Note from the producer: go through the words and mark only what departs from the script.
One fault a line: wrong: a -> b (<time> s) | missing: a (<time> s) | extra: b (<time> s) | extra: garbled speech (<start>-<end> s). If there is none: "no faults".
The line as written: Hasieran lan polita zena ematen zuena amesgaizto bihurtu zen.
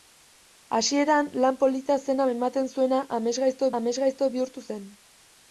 extra: amesgaizto (3.8 s)